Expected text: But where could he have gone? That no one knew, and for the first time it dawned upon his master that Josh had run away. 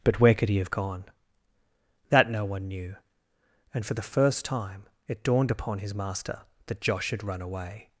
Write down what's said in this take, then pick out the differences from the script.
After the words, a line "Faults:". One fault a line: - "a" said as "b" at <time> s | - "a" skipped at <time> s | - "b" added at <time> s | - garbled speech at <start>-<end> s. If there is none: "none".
But where could he have gone? That no one knew, and for the first time it dawned upon his master that Josh had run away.
Faults:
none